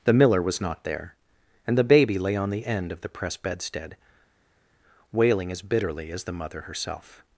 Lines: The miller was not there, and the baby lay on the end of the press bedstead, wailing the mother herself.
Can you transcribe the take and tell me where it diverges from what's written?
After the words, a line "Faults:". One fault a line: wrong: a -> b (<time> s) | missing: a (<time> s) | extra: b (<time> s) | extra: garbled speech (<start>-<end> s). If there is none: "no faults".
The miller was not there, and the baby lay on the end of the press bedstead, wailing as bitterly as the mother herself.
Faults:
extra: as bitterly as (5.5 s)